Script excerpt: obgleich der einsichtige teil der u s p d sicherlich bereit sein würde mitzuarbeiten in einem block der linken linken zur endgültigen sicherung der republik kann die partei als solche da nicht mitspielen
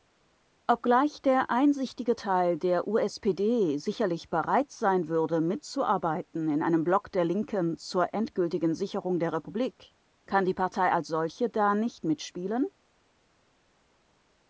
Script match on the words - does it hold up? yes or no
no